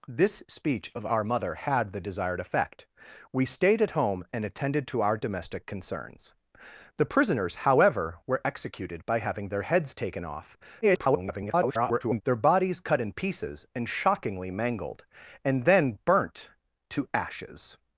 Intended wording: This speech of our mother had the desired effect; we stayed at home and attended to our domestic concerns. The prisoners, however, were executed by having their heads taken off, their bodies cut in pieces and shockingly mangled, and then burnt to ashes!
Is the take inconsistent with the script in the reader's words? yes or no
yes